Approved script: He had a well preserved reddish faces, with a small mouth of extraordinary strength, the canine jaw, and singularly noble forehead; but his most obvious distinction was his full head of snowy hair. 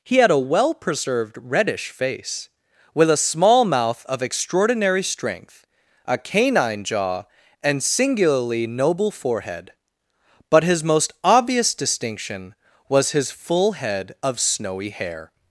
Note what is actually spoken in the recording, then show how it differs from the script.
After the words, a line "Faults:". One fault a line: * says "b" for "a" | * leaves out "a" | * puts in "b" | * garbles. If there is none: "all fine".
He had a well preserved reddish face, with a small mouth of extraordinary strength, a canine jaw, and singularly noble forehead; but his most obvious distinction was his full head of snowy hair.
Faults:
* says "face" for "faces"
* says "a" for "the"